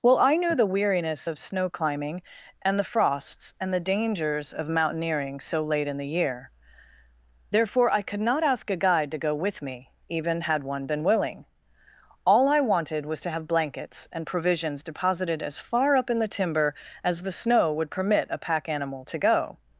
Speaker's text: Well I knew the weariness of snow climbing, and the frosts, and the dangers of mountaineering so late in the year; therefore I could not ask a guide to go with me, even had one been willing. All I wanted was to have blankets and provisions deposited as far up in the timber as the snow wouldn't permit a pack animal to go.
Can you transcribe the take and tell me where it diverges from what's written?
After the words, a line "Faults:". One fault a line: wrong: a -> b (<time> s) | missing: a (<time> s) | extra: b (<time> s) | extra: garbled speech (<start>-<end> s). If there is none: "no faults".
Well I knew the weariness of snow climbing, and the frosts, and the dangers of mountaineering so late in the year; therefore I could not ask a guide to go with me, even had one been willing. All I wanted was to have blankets and provisions deposited as far up in the timber as the snow would permit a pack animal to go.
Faults:
wrong: wouldn't -> would (17.7 s)